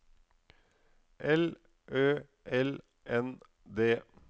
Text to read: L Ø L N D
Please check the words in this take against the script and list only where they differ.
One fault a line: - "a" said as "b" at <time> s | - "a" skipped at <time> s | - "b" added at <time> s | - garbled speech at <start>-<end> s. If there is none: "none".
none